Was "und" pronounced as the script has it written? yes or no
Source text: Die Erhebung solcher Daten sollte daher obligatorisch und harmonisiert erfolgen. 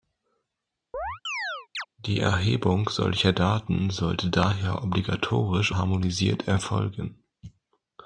no